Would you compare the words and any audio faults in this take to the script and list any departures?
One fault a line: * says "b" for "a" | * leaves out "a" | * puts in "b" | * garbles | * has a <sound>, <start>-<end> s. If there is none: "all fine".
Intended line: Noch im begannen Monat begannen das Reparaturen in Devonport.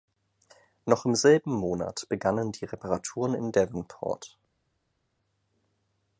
* says "selben" for "begannen"
* says "die" for "das"